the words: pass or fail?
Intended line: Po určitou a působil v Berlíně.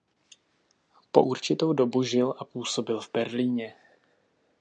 fail